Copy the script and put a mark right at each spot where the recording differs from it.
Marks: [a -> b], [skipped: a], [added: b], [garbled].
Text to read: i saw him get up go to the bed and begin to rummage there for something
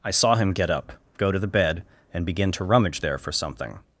i saw him get up go to the bed and begin to rummage there for something